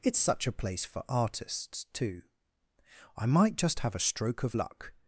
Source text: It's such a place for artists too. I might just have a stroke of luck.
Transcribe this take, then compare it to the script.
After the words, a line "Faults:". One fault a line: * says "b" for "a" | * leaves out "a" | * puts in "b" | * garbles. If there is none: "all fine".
It's such a place for artists too. I might just have a stroke of luck.
Faults:
all fine